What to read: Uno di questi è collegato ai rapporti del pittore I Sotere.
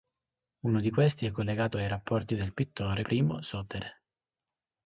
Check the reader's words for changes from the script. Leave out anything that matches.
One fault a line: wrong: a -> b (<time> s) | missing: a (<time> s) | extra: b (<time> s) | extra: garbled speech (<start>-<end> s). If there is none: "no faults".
no faults